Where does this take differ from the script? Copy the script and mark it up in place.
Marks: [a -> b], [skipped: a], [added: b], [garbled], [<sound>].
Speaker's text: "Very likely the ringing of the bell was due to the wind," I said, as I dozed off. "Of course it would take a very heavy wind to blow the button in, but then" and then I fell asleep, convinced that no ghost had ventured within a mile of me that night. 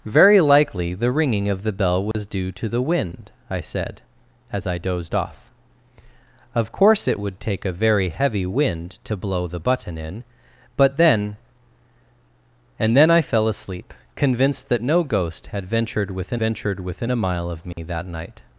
"Very likely the ringing of the bell was [dropout] due to the wind," I said, as I dozed off. "Of course it would take a very heavy wind to blow the button in, but then" and then I fell asleep, convinced that no ghost had ventured within [added: ventured within] a mile of me [dropout] that night.